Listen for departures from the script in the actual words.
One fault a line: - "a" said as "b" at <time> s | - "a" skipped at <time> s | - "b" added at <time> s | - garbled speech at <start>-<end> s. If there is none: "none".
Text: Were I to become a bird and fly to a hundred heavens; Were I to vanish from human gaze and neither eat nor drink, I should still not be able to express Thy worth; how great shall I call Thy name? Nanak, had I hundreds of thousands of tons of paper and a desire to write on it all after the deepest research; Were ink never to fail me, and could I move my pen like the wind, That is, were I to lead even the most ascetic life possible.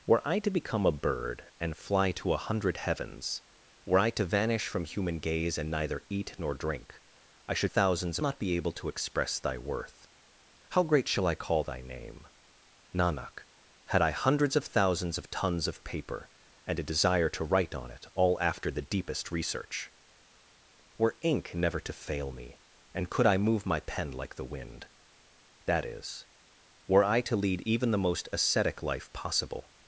- "still" said as "thousands" at 7.6 s